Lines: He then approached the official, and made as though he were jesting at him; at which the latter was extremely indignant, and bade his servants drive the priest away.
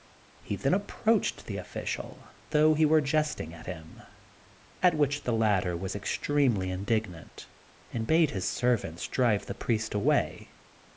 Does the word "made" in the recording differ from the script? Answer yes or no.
yes